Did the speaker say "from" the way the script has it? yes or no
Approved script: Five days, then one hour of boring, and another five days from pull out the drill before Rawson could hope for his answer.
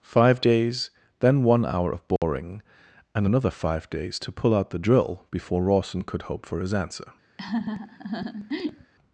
no